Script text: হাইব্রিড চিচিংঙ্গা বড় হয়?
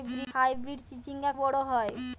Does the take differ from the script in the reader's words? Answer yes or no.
no